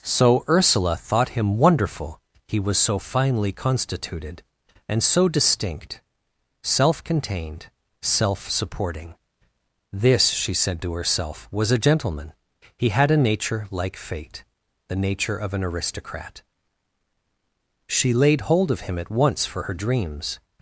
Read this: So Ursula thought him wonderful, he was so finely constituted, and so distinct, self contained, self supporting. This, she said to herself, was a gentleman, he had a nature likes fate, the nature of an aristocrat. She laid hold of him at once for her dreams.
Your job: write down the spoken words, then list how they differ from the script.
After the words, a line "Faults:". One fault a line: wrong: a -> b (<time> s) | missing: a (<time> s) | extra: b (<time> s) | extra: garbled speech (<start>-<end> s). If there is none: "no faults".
So Ursula thought him wonderful, he was so finely constituted, and so distinct, self contained, self supporting. This, she said to herself, was a gentleman, he had a nature like fate, the nature of an aristocrat. She laid hold of him at once for her dreams.
Faults:
wrong: likes -> like (13.7 s)